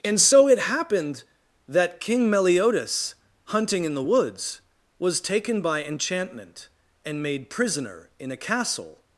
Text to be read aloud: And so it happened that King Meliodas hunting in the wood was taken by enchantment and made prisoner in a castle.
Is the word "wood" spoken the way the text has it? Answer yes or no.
no